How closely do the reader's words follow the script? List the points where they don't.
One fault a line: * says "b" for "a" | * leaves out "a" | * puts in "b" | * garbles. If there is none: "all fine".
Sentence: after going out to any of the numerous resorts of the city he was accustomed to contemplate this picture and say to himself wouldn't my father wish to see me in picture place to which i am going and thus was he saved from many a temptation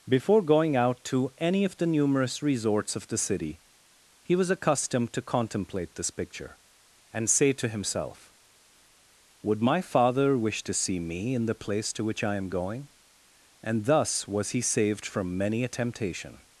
* says "before" for "after"
* says "would" for "wouldn't"
* says "the" for "picture"